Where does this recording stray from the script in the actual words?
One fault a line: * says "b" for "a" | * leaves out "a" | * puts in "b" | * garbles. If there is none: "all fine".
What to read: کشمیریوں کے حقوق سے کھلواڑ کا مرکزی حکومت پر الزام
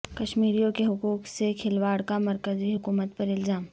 all fine